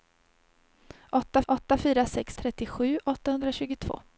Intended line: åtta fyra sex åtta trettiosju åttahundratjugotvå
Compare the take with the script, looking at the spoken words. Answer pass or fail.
fail